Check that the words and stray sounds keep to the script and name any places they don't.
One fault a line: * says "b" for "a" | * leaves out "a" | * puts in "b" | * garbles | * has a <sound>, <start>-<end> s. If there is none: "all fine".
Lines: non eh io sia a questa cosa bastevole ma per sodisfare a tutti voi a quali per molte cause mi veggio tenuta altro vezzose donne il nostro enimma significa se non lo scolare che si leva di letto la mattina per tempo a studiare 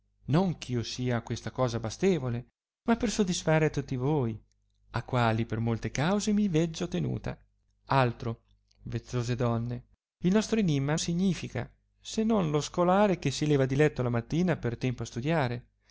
all fine